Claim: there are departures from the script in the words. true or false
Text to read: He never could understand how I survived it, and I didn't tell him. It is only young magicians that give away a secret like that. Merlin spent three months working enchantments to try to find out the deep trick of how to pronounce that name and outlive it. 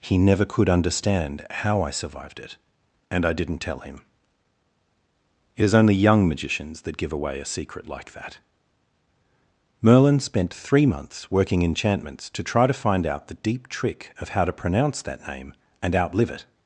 false